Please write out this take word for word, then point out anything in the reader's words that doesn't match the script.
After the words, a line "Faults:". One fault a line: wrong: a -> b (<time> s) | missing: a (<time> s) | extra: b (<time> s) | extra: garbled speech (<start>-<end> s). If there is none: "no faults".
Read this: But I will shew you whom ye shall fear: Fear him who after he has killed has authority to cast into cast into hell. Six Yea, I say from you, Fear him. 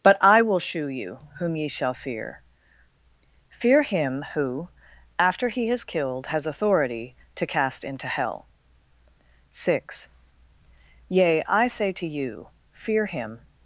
But I will shew you whom ye shall fear: Fear him who after he has killed has authority to cast into hell. Six Yea, I say to you, Fear him.
Faults:
missing: cast into (8.1 s)
wrong: from -> to (11.9 s)